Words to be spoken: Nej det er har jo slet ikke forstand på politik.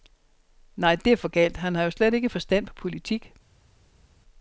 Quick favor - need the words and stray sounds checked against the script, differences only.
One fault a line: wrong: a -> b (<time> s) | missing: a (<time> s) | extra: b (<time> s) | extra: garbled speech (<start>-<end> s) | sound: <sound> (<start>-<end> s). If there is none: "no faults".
extra: for galt han (1.2 s)